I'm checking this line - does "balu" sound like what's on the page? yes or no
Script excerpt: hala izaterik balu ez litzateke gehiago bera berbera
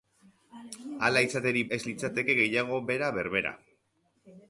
no